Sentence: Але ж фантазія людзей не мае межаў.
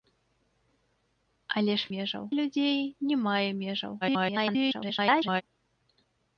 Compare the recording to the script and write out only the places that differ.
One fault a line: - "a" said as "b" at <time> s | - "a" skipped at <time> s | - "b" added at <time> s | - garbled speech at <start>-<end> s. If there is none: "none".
- "фантазія" said as "межаў" at 1.9 s
- garbled speech at 4.0-5.4 s